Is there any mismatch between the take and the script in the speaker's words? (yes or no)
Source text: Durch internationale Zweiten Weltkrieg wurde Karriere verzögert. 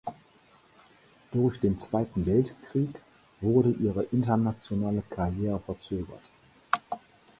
yes